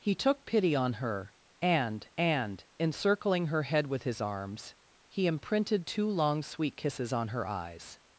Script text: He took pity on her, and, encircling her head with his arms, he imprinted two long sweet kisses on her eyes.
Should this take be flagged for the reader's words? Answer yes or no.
yes